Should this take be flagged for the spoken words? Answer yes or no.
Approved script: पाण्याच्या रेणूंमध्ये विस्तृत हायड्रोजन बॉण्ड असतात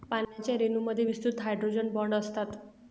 no